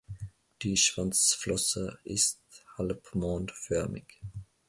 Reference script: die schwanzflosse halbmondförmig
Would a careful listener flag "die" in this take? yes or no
no